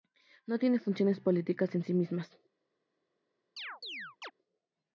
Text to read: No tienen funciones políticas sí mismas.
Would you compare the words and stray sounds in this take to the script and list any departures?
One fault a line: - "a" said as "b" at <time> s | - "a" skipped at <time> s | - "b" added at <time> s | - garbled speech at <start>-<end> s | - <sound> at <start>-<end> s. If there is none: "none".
- "en" added at 1.8 s
- chirp at 3.6-4.3 s